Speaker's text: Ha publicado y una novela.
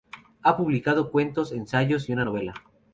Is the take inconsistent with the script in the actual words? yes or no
yes